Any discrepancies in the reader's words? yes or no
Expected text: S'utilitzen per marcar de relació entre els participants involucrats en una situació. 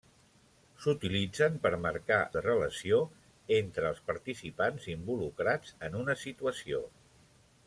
no